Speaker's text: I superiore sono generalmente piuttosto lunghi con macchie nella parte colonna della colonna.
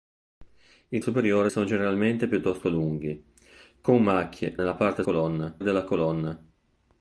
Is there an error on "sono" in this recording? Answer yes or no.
no